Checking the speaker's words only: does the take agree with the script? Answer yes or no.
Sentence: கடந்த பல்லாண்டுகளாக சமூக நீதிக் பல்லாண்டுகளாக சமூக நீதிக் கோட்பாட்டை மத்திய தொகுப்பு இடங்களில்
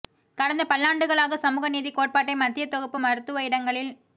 no